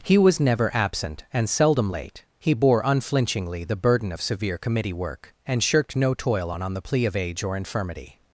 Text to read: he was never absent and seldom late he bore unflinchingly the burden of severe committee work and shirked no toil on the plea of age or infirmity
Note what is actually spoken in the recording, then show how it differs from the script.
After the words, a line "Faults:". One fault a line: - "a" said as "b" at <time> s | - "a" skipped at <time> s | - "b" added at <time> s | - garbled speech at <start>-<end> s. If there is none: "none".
he was never absent and seldom late he bore unflinchingly the burden of severe committee work and shirked no toil on on the plea of age or infirmity
Faults:
- "on" added at 6.6 s